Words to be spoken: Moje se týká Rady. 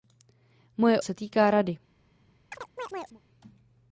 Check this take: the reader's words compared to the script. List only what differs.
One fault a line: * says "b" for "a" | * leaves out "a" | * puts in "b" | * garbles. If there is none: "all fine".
all fine